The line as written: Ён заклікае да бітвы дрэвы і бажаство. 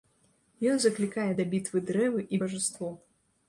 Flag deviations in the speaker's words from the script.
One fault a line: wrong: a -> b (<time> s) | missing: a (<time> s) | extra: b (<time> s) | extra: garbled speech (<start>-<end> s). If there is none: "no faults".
no faults